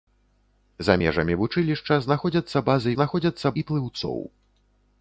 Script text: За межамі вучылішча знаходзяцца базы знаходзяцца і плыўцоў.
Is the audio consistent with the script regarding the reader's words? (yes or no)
yes